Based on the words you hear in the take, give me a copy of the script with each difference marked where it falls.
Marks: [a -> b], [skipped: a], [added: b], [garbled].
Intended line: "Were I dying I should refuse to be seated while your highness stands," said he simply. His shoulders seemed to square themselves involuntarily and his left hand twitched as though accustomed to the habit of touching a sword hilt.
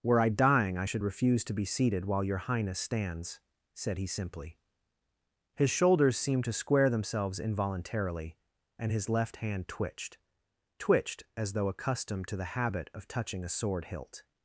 "Were I dying I should refuse to be seated while your highness stands," said he simply. His shoulders seemed to square themselves involuntarily and his left hand twitched [added: twitched] as though accustomed to the habit of touching a sword hilt.